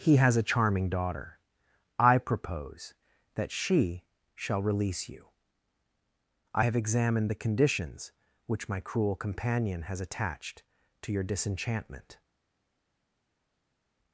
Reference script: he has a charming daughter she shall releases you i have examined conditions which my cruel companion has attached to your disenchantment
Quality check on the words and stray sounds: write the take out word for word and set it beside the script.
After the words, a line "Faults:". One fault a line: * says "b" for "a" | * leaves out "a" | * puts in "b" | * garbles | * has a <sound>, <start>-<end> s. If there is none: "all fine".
he has a charming daughter i propose that she shall release you i have examined the conditions which my cruel companion has attached to your disenchantment
Faults:
* puts in "i propose that"
* says "release" for "releases"
* puts in "the"